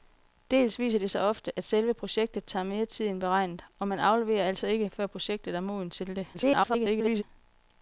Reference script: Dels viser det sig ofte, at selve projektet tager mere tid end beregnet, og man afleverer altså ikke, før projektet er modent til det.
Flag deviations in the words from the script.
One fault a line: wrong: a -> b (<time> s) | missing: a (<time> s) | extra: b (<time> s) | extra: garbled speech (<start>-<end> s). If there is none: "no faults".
extra: garbled speech (6.3-7.2 s)